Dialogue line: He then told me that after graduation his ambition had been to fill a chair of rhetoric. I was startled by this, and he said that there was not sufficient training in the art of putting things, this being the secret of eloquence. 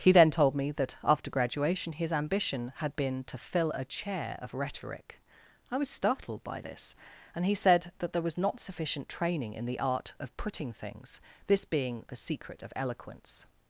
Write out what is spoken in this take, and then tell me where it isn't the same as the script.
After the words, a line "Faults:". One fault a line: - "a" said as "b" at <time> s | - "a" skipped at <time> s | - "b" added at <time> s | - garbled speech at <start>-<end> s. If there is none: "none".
He then told me that after graduation his ambition had been to fill a chair of rhetoric. I was startled by this, and he said that there was not sufficient training in the art of putting things, this being the secret of eloquence.
Faults:
none